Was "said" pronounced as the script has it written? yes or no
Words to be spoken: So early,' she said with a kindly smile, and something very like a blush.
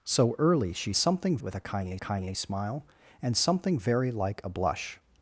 no